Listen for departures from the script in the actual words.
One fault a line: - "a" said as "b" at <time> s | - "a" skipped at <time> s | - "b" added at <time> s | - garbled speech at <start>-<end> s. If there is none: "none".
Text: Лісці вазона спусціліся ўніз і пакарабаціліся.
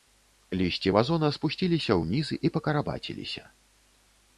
none